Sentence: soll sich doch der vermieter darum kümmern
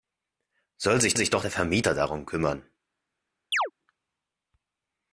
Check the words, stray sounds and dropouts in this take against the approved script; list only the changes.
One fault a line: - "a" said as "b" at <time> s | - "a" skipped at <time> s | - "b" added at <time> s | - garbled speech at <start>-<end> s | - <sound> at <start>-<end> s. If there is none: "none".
- "sich" added at 1.1 s
- chirp at 3.5-3.7 s